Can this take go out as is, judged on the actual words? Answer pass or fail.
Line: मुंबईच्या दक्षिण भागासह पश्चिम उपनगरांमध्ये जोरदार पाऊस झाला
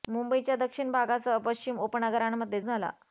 fail